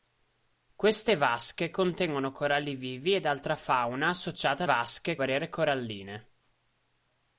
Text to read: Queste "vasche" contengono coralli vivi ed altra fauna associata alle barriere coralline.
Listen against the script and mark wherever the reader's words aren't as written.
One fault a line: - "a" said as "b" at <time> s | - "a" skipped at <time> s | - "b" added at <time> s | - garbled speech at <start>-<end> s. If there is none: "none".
- "alle" said as "vasche" at 4.6 s